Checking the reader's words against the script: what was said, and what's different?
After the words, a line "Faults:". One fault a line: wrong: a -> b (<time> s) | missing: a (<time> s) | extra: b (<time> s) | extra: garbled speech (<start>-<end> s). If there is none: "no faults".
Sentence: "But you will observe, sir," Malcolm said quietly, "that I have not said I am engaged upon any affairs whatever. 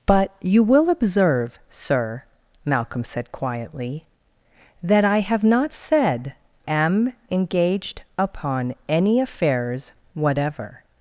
"But you will observe, sir," Malcolm said quietly, "that I have not said am engaged upon any affairs whatever.
Faults:
missing: I (6.3 s)